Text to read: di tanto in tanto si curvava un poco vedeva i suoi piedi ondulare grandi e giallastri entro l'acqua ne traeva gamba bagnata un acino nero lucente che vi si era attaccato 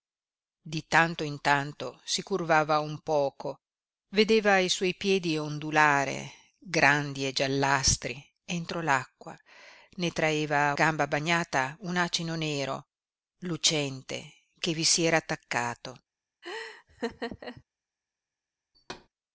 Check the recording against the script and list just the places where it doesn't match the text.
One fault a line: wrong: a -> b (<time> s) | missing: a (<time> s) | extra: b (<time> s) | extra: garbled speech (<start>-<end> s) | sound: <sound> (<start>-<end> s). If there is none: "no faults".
sound: laugh (16.4-17.6 s)
sound: thud (18.7-19.1 s)